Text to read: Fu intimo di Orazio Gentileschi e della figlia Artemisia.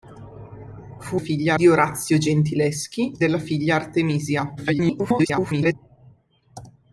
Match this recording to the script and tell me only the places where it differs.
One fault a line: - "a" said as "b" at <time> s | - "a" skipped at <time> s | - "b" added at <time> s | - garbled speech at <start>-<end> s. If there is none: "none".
- "intimo" said as "figlia" at 1.2 s
- "e" skipped at 3.2 s
- garbled speech at 4.6-5.7 s